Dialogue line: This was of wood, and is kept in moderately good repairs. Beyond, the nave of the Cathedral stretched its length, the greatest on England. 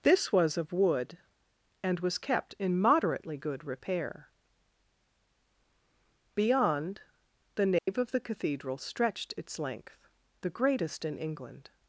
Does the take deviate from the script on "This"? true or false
false